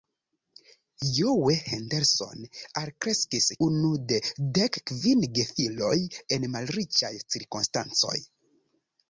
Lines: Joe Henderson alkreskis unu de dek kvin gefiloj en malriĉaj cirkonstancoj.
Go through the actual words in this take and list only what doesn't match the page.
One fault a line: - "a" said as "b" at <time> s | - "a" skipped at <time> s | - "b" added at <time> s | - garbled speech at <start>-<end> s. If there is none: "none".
none